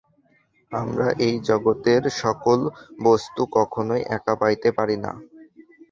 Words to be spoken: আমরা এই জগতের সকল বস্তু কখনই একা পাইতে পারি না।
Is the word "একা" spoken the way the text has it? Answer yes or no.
yes